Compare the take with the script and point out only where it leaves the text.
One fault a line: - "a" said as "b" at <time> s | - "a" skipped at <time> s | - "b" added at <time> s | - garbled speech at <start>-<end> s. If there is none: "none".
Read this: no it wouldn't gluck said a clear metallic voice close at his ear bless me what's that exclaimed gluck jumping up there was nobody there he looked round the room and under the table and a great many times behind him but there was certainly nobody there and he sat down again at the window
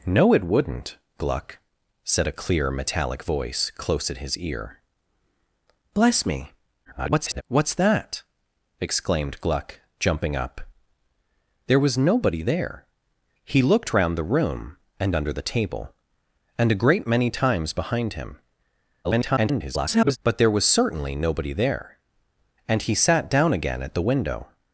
- garbled speech at 6.8-7.4 s
- garbled speech at 19.0-20.2 s